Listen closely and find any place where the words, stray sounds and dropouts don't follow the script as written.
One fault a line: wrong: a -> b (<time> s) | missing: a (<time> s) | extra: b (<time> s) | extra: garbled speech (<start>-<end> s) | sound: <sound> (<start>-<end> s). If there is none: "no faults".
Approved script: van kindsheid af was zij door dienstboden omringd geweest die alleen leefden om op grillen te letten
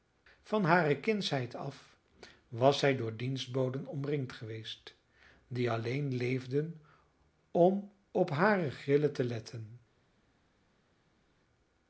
extra: hare (0.6 s)
extra: hare (8.3 s)